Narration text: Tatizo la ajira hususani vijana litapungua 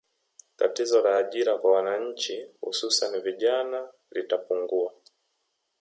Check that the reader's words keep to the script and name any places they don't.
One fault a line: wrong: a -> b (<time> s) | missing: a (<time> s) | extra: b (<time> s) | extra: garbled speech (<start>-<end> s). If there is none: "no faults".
extra: kwa wananchi (1.6 s)